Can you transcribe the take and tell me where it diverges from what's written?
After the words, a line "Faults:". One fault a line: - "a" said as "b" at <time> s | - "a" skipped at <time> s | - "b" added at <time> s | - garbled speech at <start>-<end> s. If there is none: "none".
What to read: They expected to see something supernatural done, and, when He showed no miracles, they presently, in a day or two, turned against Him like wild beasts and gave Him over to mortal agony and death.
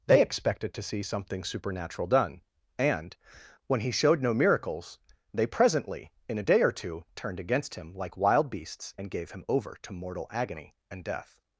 They expected to see something supernatural done, and, when He showed no miracles, they presently, in a day or two, turned against Him like wild beasts and gave Him over to mortal agony and death.
Faults:
none